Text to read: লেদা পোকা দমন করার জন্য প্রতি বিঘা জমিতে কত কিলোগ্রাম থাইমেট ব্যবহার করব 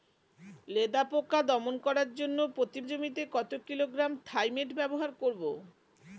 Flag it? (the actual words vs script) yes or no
yes